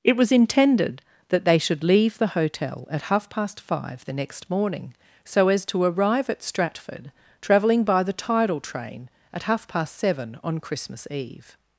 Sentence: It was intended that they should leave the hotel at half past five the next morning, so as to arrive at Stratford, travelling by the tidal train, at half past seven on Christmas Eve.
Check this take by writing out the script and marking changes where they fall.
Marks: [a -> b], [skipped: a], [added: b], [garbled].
It was intended that they should leave the hotel at half past five the next morning, so as to arrive at Stratford, travelling by the tidal train, at half past seven on Christmas Eve.